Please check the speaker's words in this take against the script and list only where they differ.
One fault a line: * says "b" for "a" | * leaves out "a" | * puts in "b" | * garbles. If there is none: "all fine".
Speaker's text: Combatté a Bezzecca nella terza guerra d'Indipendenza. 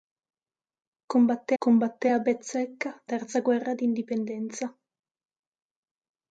* puts in "combatté"
* leaves out "nella"